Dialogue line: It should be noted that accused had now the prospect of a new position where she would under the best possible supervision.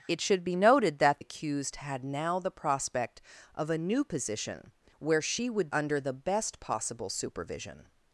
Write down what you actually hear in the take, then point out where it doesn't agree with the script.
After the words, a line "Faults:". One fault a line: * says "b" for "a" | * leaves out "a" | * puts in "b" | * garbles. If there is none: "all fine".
It should be noted that accused had now the prospect of a new position where she would under the best possible supervision.
Faults:
all fine